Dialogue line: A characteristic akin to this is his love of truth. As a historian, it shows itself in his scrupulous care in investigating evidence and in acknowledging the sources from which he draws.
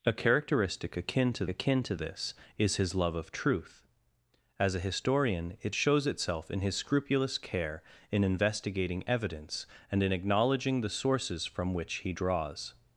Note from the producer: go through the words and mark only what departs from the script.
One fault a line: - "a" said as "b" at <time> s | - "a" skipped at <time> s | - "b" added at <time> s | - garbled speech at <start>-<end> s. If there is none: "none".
- "akin to" added at 1.5 s